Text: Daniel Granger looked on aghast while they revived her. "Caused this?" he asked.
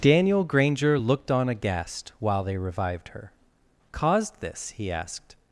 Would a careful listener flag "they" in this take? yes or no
no